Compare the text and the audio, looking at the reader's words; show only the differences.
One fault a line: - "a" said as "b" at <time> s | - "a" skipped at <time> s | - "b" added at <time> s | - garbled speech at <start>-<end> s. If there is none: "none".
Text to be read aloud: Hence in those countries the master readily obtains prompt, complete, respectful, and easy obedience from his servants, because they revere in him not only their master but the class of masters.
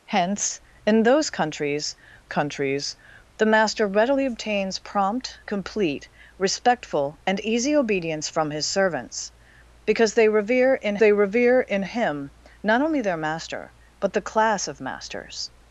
- "countries" added at 2.3 s
- "they revere in" added at 11.0 s